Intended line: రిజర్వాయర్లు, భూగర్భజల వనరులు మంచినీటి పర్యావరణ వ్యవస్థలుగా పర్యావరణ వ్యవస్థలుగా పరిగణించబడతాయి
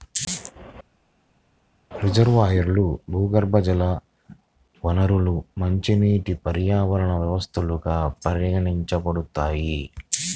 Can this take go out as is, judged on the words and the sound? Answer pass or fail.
fail